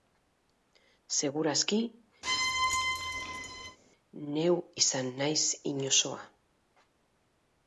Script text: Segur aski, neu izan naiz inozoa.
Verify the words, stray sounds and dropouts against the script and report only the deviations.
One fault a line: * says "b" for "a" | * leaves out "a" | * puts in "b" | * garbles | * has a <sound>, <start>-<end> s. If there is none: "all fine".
* has a squeak, 2.2-3.8 s